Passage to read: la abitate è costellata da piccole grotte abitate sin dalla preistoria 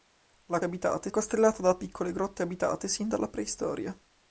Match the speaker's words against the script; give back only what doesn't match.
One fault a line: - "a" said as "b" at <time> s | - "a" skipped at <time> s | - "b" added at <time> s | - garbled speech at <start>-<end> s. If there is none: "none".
none